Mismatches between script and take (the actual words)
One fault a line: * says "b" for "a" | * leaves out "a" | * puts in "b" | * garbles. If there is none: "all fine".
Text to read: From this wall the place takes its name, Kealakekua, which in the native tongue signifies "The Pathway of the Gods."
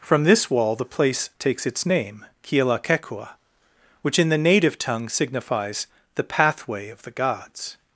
all fine